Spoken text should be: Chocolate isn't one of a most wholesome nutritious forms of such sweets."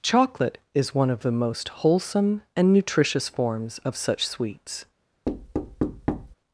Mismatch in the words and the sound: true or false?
true